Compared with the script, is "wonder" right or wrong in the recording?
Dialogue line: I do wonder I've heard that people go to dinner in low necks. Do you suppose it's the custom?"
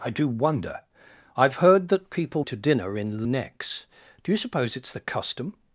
right